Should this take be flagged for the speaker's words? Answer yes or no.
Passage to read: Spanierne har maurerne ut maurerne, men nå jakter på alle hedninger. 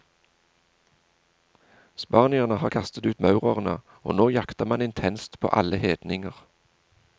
yes